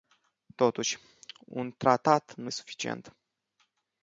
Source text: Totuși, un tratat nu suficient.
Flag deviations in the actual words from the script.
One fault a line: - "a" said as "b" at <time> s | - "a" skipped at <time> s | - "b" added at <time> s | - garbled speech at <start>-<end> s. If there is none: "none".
none